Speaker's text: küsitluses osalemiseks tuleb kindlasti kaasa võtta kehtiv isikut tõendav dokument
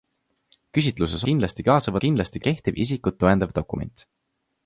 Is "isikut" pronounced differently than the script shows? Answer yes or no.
no